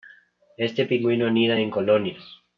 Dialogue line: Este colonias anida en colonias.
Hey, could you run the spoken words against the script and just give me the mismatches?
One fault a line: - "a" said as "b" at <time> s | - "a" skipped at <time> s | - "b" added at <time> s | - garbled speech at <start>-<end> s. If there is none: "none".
- "colonias" said as "pingüino" at 0.8 s